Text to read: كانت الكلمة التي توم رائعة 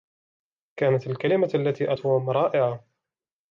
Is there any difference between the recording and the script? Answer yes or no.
no